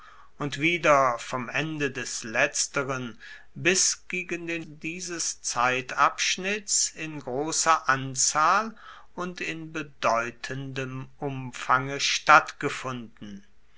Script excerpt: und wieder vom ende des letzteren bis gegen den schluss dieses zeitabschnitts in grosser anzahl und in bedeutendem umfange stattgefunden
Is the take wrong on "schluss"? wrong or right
wrong